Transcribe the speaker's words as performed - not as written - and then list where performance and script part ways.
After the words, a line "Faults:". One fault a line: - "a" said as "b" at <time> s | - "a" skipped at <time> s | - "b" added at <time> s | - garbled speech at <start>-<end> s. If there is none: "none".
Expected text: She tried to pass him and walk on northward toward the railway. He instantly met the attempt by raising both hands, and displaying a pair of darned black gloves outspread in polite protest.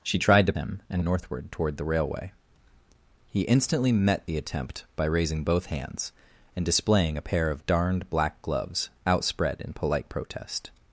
She tried to him and northward toward the railway. He instantly met the attempt by raising both hands, and displaying a pair of darned black gloves outspread in polite protest.
Faults:
- "pass" skipped at 0.5 s
- "walk on" skipped at 1.0 s